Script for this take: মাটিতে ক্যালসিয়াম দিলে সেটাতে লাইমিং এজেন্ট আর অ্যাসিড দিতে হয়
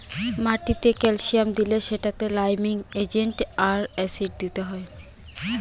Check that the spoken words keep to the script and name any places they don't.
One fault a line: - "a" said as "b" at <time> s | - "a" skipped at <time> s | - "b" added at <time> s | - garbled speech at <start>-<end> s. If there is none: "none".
none